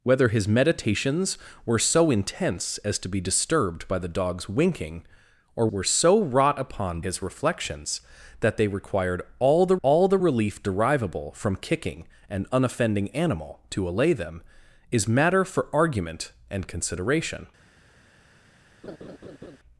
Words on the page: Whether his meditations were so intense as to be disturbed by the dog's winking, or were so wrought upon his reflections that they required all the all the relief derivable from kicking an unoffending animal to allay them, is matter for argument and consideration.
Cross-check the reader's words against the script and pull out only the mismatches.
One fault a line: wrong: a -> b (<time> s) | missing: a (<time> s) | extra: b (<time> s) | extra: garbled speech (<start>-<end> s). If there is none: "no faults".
no faults